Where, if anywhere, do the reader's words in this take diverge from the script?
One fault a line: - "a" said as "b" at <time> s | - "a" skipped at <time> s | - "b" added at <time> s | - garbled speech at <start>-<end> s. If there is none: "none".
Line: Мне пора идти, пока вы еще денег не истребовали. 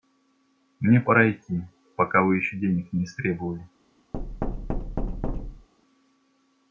none